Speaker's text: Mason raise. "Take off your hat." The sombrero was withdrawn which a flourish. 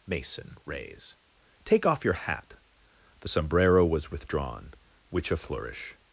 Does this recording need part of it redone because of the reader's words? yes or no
no